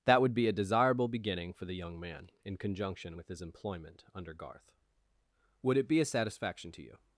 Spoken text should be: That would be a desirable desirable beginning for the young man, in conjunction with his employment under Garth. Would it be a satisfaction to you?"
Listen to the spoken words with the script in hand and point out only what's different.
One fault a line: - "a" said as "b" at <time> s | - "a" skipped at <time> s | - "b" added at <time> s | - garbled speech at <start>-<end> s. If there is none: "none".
- "desirable" skipped at 1.1 s